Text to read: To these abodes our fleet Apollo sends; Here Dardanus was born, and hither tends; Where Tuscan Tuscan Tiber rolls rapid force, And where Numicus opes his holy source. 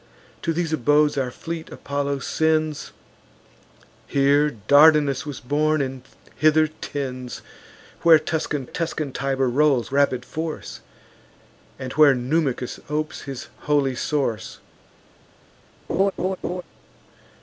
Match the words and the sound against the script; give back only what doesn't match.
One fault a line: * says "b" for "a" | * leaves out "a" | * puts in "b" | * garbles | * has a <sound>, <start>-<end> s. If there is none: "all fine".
* has a laugh, 15.9-16.6 s